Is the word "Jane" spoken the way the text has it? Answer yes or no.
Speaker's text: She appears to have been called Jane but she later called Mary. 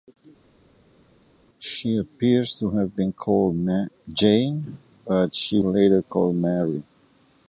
yes